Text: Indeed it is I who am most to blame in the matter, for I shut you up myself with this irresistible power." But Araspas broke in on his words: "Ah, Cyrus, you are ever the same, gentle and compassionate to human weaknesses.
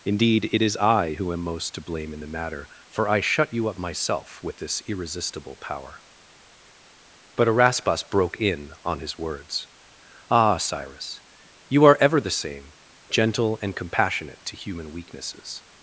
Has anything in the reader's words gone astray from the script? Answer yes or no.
no